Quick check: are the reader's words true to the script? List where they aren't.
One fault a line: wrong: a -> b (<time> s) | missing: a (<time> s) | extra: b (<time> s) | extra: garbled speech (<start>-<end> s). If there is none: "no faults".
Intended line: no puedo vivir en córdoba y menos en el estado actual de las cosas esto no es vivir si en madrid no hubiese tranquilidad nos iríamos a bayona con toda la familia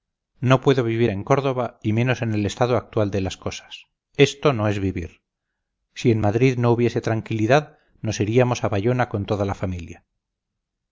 no faults